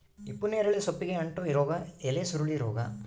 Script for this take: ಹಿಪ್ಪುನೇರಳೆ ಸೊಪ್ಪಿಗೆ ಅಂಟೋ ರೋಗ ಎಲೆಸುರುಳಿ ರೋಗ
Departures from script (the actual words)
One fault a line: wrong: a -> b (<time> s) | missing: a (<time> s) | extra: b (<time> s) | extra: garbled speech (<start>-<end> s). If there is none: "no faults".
no faults